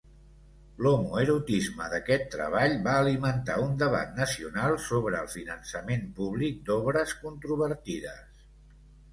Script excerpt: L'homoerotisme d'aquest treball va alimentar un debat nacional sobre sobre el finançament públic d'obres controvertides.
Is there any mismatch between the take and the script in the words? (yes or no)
yes